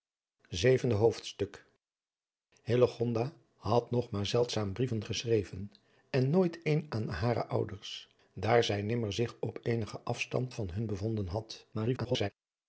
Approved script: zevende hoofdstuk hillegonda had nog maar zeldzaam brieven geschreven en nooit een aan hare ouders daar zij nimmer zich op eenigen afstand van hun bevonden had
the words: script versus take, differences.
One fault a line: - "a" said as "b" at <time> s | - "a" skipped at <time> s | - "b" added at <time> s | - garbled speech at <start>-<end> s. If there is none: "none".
- garbled speech at 11.7-12.3 s